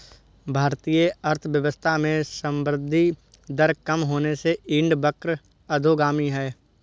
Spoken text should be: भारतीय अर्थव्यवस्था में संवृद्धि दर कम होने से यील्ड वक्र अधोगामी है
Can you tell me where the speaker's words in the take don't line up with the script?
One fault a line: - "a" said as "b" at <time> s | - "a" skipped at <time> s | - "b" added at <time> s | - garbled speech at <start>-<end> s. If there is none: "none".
none